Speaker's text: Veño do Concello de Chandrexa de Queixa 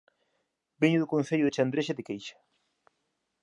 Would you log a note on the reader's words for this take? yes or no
no